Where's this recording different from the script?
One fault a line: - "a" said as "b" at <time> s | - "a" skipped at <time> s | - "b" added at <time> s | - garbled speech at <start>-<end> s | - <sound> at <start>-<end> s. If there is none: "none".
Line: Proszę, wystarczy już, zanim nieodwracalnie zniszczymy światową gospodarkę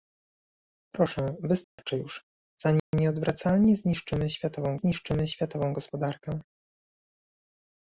- dropout at 1.6-1.8 s
- dropout at 2.8-2.9 s
- "zniszczymy światową" added at 4.7 s